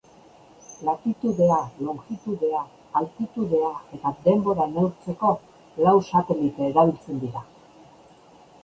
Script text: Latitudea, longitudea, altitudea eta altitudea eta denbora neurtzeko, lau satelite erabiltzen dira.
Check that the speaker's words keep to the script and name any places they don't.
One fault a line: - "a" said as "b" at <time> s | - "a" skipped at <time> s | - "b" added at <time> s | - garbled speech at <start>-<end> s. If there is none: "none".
- "altitudea eta" skipped at 4.2 s